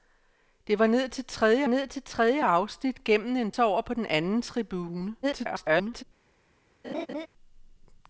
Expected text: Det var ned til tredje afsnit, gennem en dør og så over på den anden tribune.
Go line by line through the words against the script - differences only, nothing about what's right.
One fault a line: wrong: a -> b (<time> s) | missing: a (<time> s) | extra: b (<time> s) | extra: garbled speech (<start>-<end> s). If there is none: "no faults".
extra: ned til tredje (1.7 s)
missing: dør og (3.5 s)
extra: garbled speech (5.2-6.0 s)